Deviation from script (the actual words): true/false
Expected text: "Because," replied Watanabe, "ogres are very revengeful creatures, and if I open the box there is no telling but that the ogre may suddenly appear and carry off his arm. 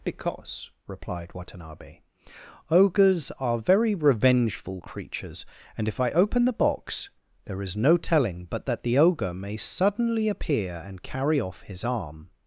false